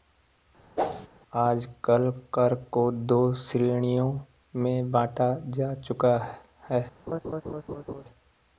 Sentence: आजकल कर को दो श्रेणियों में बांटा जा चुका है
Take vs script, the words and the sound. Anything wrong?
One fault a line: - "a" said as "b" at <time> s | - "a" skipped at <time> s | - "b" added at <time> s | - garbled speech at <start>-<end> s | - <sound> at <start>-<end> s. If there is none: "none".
- whoosh at 0.8-1.1 s
- laugh at 7.1-8.0 s